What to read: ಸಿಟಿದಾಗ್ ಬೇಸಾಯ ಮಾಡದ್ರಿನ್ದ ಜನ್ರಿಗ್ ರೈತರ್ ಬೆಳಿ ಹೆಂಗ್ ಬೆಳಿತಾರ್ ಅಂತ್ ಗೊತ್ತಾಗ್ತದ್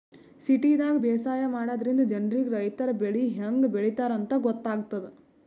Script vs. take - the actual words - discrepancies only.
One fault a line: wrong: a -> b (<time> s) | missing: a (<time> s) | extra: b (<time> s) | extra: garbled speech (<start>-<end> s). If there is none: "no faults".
no faults